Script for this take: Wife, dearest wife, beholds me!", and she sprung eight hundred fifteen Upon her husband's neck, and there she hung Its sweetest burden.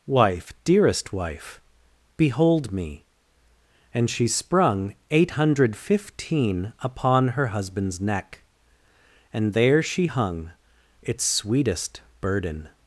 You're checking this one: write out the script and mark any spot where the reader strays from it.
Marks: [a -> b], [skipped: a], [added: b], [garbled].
Wife, dearest wife, [beholds -> behold] me!", and she sprung eight hundred fifteen Upon her husband's neck, and there she hung Its sweetest burden.